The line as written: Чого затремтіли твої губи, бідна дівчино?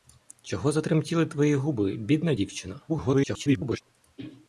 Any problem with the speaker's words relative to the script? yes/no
yes